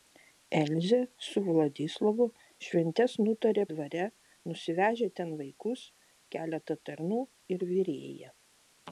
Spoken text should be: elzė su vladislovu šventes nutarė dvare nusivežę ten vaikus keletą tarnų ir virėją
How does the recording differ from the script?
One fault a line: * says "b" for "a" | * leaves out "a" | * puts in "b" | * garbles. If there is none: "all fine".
all fine